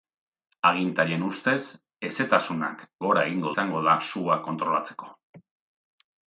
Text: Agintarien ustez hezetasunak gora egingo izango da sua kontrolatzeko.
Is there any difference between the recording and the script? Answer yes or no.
no